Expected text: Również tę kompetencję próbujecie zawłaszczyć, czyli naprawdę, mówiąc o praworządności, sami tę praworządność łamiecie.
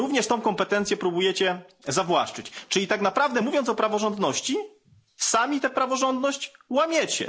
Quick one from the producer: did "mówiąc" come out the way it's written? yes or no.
yes